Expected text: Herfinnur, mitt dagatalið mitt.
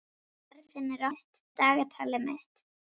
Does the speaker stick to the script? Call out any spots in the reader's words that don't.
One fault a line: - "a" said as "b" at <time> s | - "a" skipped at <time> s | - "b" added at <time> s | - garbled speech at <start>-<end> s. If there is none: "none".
none